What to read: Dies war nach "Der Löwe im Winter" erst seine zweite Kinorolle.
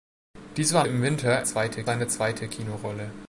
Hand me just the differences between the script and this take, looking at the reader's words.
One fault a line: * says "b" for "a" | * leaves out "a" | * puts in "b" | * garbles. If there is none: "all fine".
* leaves out "nach Der Löwe"
* says "zweite" for "erst"